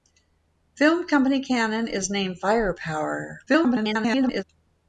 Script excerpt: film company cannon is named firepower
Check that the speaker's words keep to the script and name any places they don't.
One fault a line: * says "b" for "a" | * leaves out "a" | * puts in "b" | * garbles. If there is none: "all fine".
* garbles